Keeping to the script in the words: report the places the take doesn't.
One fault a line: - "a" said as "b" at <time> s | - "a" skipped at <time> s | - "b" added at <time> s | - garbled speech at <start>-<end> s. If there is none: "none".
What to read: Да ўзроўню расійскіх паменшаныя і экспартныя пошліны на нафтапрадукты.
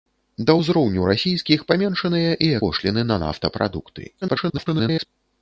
- "экспартныя" skipped at 2.5 s
- garbled speech at 4.2-5.1 s